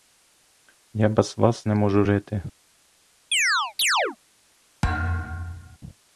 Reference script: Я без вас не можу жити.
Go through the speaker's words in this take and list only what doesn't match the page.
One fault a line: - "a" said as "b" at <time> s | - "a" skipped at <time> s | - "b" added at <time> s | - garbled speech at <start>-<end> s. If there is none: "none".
none